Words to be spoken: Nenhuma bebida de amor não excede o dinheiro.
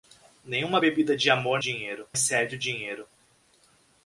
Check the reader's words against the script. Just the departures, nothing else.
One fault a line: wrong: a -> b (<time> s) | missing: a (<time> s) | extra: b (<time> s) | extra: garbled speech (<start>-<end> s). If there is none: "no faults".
wrong: não -> dinheiro (1.6 s)